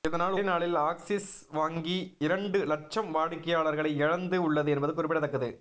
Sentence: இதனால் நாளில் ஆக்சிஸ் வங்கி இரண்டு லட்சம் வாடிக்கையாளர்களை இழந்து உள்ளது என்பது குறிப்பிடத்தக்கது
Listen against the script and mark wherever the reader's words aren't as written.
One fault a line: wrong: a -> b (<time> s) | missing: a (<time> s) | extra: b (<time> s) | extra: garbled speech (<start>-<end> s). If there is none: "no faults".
no faults